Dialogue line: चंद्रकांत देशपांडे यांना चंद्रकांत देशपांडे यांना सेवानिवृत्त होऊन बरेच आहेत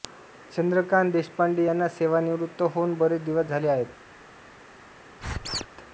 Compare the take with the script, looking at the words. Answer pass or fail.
fail